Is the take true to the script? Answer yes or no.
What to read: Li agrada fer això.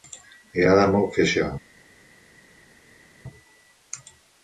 no